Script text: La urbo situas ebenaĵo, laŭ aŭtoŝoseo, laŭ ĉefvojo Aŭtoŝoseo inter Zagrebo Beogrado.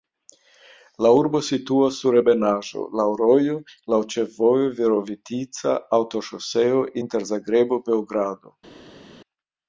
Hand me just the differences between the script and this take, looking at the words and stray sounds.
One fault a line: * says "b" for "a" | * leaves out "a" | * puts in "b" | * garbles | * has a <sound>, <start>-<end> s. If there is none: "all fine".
* puts in "sur"
* says "rojo" for "aŭtoŝoseo"
* puts in "Virovitica"